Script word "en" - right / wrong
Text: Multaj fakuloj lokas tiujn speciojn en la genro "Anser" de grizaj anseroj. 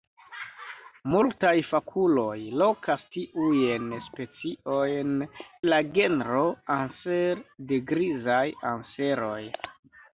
wrong